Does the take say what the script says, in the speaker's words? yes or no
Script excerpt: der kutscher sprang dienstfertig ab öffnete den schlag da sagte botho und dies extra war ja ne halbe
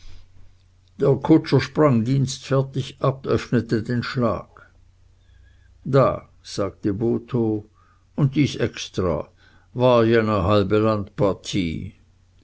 yes